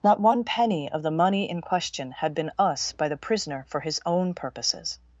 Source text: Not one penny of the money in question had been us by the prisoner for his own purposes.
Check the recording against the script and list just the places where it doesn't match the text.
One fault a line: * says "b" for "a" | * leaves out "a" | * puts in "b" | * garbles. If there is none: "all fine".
all fine